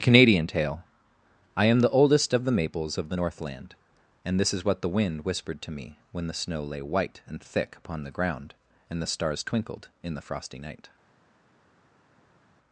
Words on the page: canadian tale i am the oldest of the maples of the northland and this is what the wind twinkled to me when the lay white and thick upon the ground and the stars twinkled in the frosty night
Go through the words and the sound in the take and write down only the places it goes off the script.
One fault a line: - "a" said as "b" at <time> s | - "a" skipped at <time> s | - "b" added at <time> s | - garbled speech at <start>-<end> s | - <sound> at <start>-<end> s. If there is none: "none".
- "twinkled" said as "whispered" at 5.2 s
- "snow" added at 6.3 s